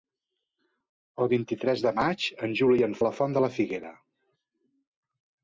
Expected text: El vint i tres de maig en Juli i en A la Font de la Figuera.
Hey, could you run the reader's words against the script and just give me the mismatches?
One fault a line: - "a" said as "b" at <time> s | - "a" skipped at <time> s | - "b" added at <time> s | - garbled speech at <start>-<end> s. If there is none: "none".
none